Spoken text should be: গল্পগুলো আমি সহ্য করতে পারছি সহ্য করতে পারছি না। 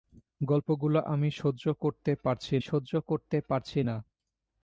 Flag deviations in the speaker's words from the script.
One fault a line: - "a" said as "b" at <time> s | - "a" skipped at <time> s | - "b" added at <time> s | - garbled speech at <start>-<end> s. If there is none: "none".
none